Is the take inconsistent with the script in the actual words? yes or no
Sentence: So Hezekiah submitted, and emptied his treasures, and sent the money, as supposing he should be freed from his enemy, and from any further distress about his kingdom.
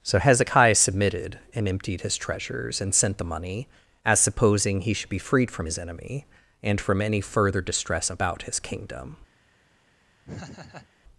no